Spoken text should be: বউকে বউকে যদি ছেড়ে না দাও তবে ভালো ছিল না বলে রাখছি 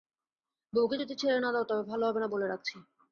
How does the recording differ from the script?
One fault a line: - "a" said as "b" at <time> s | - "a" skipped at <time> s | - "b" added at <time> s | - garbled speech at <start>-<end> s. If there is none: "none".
- "বউকে" skipped at 1.0 s
- "ছিল" said as "হবে" at 2.1 s